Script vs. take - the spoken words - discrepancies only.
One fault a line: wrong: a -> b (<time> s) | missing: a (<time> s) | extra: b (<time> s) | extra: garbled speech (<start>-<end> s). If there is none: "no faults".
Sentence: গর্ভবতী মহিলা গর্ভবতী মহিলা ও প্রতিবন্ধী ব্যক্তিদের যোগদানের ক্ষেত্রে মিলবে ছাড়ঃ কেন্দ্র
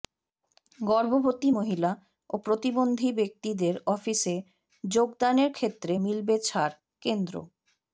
missing: গর্ভবতী মহিলা (1.9 s)
extra: অফিসে (3.9 s)